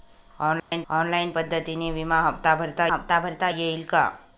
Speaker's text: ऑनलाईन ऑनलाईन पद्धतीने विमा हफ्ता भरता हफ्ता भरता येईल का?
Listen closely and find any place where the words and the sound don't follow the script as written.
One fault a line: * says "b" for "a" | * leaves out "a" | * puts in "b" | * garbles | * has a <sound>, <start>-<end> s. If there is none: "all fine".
* has a dropout, 0.6-0.7 s